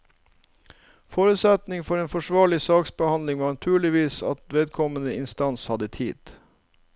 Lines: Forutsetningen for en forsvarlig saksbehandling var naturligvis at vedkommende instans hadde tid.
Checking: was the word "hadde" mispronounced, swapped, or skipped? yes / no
no